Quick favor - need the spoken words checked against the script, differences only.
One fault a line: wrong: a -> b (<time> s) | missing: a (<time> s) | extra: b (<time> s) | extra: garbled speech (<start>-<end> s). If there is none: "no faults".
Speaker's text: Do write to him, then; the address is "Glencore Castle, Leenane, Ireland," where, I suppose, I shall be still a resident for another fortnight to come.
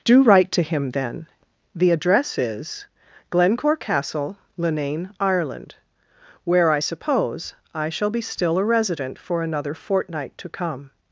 no faults